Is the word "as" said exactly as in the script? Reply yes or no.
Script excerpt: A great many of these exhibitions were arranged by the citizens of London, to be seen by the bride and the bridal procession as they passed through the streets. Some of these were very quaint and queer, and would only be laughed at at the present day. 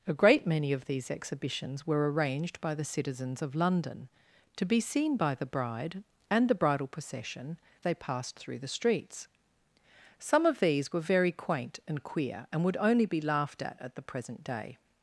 no